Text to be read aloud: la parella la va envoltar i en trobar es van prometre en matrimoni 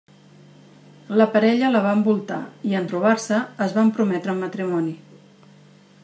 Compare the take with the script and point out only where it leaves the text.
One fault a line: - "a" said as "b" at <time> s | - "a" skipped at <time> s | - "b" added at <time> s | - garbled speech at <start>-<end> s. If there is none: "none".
- "se" added at 3.2 s